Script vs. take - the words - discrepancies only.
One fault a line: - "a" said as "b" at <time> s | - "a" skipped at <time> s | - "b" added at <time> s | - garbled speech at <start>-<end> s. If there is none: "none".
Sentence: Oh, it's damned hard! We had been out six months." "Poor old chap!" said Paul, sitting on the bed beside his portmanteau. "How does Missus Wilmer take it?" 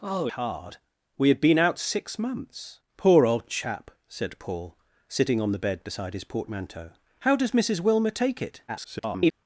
- "it's damned" skipped at 0.3 s
- garbled speech at 8.7-9.3 s